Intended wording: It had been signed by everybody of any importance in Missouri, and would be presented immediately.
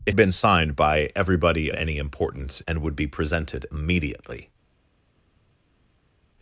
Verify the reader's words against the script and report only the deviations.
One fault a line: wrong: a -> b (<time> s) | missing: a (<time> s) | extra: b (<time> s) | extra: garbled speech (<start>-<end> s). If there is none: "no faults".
missing: had (0.1 s)
missing: of (1.7 s)
missing: in Missouri (2.6 s)